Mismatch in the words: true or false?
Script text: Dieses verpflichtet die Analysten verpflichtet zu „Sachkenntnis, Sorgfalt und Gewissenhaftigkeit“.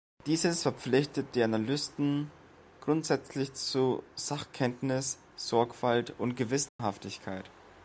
true